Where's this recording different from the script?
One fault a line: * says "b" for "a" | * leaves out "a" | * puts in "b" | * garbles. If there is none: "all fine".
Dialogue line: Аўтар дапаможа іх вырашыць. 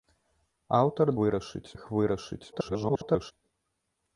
* says "вырашыць" for "дапаможа"
* garbles